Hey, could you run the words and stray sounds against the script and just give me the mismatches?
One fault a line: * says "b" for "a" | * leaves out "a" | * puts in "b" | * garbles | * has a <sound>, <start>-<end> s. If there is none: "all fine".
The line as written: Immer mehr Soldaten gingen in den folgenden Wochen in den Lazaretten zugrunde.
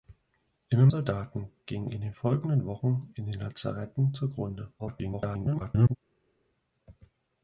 * leaves out "mehr"
* garbles